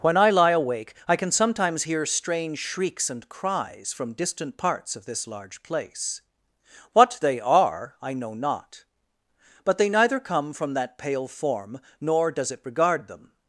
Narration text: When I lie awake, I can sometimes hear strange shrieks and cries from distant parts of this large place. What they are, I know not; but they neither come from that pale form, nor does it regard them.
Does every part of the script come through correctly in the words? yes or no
yes